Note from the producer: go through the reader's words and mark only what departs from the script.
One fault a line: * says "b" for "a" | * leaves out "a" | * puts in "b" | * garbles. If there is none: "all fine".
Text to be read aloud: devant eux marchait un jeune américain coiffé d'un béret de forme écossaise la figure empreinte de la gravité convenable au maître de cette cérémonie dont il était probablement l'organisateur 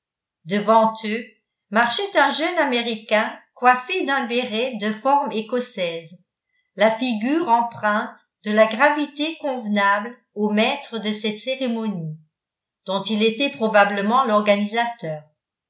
all fine